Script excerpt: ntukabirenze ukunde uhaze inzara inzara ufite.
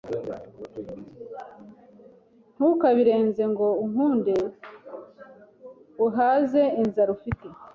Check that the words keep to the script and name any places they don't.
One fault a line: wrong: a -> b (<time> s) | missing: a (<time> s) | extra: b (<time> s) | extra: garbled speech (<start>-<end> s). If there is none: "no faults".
extra: ngo (3.5 s)
missing: inzara (7.1 s)